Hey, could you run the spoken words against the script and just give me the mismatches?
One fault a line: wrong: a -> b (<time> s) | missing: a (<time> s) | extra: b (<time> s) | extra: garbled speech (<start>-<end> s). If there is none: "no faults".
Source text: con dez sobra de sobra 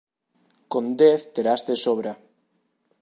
wrong: sobra -> terás (1.4 s)